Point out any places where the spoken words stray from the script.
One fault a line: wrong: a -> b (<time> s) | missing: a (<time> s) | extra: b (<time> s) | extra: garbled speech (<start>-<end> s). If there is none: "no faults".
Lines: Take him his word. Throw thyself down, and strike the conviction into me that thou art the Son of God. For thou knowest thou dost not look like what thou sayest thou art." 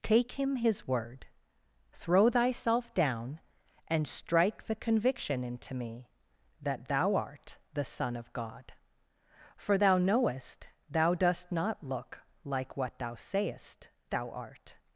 no faults